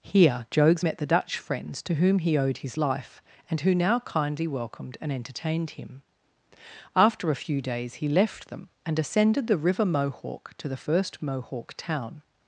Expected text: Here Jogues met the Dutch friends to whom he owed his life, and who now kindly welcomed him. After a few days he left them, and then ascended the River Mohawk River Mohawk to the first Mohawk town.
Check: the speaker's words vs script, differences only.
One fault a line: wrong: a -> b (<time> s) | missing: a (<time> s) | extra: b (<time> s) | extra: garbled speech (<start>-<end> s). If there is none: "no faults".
extra: and entertained (5.0 s)
missing: then (9.0 s)
missing: River Mohawk (10.5 s)